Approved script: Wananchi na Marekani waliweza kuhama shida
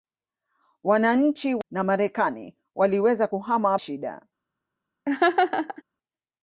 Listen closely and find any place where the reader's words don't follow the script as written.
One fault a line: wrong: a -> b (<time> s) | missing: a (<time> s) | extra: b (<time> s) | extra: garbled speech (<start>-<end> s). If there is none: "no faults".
no faults